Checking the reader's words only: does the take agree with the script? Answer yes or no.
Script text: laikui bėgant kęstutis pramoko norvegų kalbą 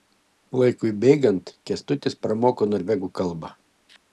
yes